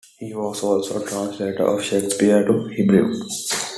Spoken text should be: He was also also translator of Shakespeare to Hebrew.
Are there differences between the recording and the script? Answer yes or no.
yes